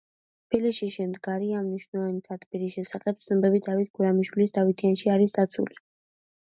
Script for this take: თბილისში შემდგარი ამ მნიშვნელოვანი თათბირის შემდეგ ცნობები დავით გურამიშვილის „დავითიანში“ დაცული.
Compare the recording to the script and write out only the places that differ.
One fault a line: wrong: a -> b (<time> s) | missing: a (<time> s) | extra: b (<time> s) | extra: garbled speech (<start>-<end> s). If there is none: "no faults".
wrong: შემდეგ -> შესახებ (2.8 s)
extra: არის (5.2 s)